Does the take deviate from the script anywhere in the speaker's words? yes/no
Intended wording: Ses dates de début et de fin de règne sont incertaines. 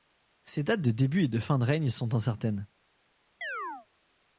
no